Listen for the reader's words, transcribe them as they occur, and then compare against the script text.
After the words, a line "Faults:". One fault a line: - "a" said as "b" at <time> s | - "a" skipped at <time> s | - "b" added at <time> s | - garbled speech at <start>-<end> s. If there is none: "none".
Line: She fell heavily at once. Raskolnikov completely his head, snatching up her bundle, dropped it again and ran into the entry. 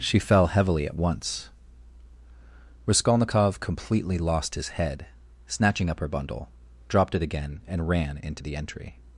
She fell heavily at once. Raskolnikov completely lost his head, snatching up her bundle, dropped it again and ran into the entry.
Faults:
- "lost" added at 4.2 s